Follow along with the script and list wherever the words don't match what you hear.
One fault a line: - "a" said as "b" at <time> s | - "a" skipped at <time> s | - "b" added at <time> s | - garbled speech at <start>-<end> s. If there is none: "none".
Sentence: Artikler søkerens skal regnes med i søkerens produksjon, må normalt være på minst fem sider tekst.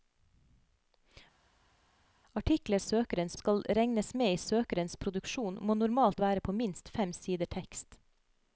none